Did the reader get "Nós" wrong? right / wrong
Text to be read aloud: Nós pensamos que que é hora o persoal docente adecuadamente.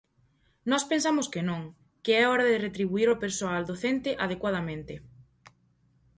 right